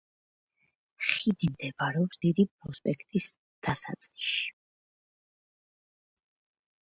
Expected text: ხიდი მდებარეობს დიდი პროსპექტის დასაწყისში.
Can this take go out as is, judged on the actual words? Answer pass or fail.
pass